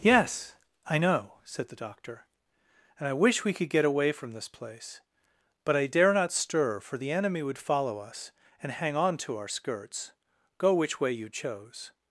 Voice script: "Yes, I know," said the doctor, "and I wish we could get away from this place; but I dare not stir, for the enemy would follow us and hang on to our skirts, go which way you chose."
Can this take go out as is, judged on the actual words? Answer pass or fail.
pass